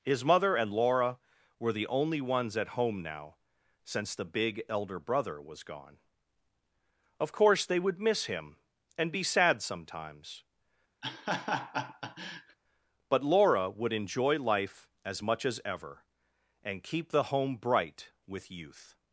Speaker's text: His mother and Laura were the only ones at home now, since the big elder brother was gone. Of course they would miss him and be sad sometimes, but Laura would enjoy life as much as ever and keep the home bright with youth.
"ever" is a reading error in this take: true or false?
false